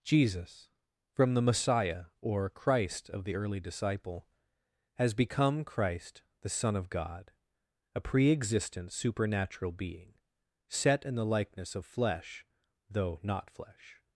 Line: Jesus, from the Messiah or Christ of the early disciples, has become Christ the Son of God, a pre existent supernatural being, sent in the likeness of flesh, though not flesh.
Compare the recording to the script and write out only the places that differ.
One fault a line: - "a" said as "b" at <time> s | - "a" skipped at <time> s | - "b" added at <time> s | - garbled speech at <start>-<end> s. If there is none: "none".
- "disciples" said as "disciple" at 3.6 s
- "sent" said as "set" at 10.7 s